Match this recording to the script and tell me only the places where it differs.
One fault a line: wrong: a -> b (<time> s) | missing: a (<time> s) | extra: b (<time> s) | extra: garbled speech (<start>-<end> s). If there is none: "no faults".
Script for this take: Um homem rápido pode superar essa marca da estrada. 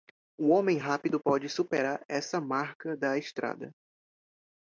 no faults